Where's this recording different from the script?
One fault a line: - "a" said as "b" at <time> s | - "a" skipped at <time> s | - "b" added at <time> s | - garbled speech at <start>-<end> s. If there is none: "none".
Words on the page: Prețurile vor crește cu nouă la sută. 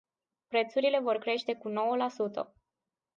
none